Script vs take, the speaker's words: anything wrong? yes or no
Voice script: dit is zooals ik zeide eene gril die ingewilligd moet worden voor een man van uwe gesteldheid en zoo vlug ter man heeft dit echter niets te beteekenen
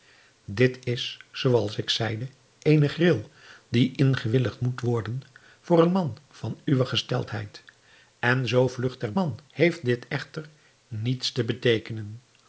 no